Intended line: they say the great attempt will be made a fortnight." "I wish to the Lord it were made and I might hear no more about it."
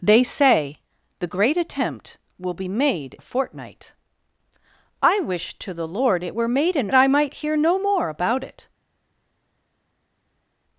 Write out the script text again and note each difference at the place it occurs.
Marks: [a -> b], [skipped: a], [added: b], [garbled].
they say the great attempt will be made a fortnight." "I wish to the Lord it were made and I might hear no more about it."